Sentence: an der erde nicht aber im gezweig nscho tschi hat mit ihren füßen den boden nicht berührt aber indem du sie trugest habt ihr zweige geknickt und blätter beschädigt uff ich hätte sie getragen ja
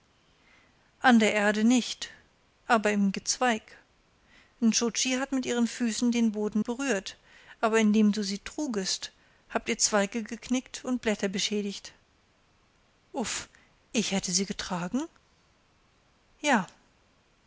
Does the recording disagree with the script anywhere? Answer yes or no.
yes